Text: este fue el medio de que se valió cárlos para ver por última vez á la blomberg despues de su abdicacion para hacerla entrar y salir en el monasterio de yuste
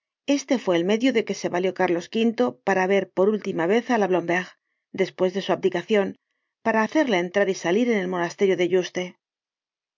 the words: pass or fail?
fail